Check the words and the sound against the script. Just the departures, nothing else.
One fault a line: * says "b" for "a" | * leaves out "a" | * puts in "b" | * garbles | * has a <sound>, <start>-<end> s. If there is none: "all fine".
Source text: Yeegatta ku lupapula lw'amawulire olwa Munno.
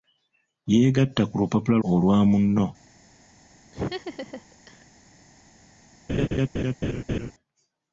* leaves out "lw'amawulire"
* has a laugh, 3.7-4.9 s
* has a laugh, 6.1-7.3 s